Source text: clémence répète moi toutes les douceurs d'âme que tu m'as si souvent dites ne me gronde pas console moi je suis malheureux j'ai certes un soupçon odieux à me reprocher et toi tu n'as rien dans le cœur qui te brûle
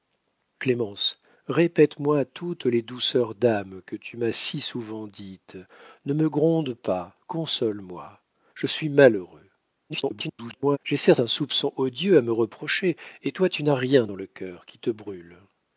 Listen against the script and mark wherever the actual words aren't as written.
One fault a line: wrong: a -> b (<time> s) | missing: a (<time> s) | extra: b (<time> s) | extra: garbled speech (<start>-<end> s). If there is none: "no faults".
extra: garbled speech (9.9-10.8 s)